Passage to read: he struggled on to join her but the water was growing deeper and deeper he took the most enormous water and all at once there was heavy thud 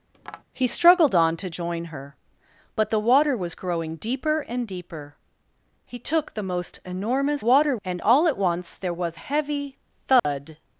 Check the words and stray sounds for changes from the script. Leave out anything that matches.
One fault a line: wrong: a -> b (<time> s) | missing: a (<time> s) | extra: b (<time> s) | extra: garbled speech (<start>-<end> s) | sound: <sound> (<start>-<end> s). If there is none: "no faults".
sound: tap (0.1-0.4 s)
sound: dropout (10.2-10.2 s)